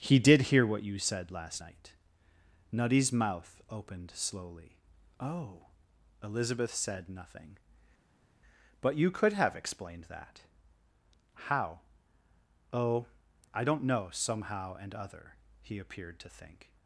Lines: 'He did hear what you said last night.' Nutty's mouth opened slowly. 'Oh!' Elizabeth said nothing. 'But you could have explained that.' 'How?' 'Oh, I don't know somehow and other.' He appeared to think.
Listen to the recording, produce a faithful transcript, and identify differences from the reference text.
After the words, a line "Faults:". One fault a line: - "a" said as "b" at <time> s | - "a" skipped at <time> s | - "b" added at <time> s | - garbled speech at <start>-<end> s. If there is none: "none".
'He did hear what you said last night.' Nutty's mouth opened slowly. 'Oh!' Elizabeth said nothing. 'But you could have explained that.' 'How?' 'Oh, I don't know somehow and other.' He appeared to think.
Faults:
none